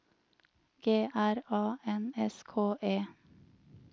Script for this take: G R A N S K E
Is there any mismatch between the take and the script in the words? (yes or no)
no